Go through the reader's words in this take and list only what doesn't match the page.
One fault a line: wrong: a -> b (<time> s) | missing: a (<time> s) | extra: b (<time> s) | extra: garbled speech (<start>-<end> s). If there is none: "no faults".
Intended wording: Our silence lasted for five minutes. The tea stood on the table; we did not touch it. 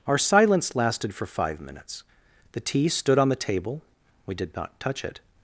no faults